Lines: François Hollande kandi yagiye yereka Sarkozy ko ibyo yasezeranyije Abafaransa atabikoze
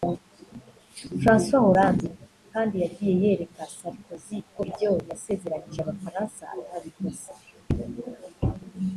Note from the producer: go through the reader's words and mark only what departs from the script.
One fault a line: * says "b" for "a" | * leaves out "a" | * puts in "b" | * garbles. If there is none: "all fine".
all fine